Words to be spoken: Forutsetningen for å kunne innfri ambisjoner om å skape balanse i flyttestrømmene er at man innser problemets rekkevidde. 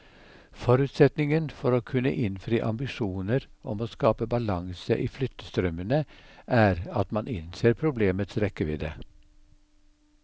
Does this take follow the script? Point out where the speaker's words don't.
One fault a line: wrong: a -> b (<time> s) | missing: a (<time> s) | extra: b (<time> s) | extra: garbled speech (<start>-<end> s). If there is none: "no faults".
no faults